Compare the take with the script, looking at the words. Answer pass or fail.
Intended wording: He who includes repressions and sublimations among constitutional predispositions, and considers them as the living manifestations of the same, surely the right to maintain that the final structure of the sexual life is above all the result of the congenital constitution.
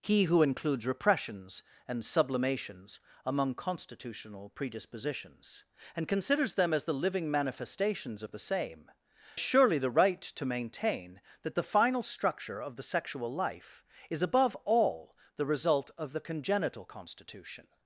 pass